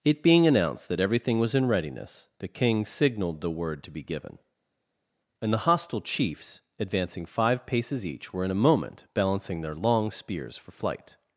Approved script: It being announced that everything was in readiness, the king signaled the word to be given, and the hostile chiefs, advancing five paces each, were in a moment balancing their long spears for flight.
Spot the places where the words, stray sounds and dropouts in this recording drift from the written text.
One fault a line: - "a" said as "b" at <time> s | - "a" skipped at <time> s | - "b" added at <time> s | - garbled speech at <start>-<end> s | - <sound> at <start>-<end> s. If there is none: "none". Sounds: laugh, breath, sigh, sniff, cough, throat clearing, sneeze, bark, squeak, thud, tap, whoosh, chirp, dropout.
none